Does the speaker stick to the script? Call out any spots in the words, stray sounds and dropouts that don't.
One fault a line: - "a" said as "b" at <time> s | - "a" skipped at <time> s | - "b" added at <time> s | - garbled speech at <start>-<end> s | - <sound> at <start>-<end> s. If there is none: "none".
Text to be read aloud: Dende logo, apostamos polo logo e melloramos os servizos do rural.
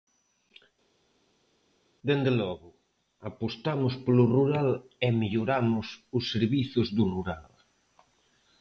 - "logo" said as "rural" at 4.4 s